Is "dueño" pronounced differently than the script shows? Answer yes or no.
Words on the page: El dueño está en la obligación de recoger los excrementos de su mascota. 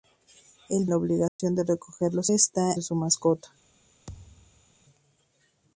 yes